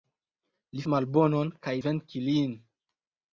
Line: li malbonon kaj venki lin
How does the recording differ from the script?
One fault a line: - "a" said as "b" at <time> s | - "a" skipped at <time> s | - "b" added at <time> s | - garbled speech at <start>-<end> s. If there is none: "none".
none